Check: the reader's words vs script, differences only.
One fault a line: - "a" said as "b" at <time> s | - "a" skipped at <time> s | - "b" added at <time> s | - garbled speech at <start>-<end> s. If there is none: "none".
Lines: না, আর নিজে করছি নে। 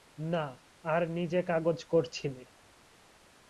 - "কাগজ" added at 1.4 s